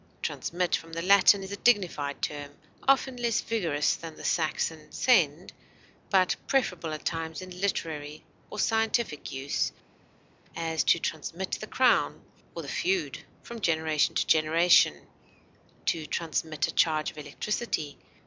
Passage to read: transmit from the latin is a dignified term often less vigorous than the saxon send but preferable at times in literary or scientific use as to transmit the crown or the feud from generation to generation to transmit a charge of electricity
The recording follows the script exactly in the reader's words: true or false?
true